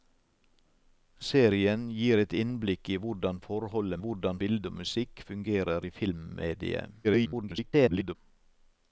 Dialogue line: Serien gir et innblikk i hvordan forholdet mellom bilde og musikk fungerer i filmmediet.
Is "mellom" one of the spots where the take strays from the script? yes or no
yes